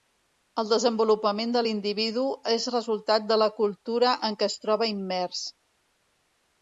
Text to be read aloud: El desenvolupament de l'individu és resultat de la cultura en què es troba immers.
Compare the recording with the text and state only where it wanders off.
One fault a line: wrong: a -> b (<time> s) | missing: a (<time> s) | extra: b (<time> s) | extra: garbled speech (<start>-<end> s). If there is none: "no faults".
no faults